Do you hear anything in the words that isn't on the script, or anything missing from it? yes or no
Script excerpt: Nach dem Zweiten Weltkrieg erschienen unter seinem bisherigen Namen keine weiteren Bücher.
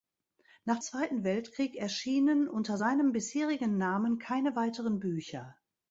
yes